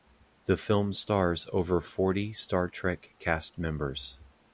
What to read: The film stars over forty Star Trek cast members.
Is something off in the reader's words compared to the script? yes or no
no